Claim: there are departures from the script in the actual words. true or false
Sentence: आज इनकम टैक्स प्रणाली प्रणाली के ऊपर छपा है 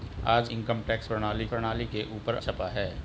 false